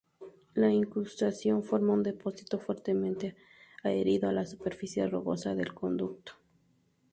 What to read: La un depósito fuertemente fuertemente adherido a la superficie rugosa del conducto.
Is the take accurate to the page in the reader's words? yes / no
no